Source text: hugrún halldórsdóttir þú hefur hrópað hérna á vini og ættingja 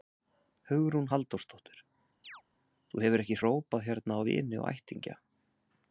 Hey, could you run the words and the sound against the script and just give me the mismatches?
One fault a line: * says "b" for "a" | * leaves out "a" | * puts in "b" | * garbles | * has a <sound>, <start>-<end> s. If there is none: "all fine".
* has a chirp, 2.2-2.4 s
* puts in "ekki"